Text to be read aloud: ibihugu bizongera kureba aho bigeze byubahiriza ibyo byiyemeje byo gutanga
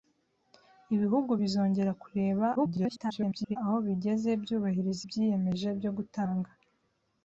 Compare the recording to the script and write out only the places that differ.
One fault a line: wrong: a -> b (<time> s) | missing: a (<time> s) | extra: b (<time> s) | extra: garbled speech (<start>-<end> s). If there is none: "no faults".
extra: garbled speech (2.6-3.6 s)
missing: ibyo (5.0 s)